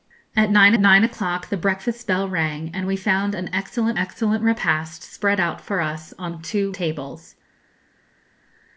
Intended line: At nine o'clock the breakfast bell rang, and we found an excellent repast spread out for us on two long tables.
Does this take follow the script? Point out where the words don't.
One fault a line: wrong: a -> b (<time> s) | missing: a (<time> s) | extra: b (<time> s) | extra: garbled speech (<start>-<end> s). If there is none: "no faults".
extra: nine (0.8 s)
extra: excellent (4.0 s)
missing: long (6.7 s)